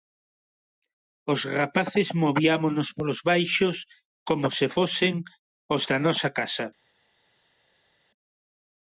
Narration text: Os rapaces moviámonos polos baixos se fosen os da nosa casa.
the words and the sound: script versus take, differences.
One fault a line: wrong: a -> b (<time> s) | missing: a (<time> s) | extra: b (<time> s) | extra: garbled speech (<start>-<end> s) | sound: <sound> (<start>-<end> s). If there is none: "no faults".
extra: como (4.3 s)